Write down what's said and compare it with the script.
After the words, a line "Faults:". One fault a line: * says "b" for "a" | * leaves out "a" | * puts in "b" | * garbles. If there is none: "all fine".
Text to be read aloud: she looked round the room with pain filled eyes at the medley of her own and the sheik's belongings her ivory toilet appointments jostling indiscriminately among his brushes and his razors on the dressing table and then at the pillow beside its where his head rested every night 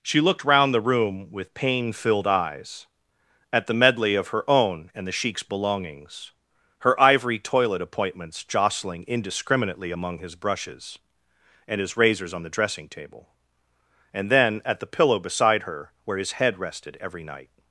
she looked round the room with pain filled eyes at the medley of her own and the sheik's belongings her ivory toilet appointments jostling indiscriminately among his brushes and his razors on the dressing table and then at the pillow beside her where his head rested every night
Faults:
* says "her" for "its"